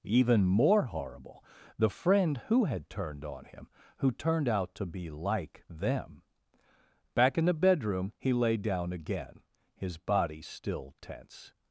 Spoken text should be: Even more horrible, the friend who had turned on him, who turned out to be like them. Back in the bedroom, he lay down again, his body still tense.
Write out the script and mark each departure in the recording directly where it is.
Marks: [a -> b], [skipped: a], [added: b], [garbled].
Even more horrible, the friend who had turned on him, who turned out to be like them. Back in the bedroom, he lay down again, his body still tense.